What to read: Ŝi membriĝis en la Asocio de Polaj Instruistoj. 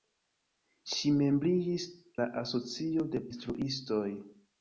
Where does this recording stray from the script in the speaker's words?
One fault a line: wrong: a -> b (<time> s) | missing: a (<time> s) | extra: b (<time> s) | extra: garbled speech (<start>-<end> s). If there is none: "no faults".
missing: en (1.9 s)
missing: Polaj (3.2 s)